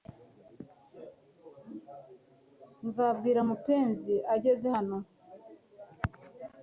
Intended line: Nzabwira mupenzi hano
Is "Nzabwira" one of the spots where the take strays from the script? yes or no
no